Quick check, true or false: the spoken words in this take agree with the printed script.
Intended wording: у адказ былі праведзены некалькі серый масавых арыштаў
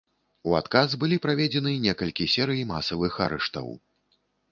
true